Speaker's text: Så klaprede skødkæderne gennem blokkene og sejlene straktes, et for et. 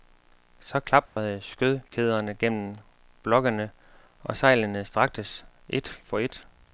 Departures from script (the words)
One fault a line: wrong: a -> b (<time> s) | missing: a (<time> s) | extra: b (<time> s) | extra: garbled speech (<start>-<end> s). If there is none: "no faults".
no faults